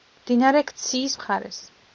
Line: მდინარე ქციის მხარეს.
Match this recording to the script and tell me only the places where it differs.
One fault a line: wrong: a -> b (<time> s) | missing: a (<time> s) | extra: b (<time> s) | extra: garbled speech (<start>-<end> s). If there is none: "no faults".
no faults